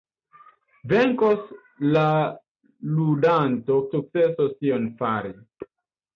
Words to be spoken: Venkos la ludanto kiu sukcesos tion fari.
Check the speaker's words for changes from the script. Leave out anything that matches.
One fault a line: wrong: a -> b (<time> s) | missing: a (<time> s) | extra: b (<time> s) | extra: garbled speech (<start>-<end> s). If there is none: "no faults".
missing: kiu (3.8 s)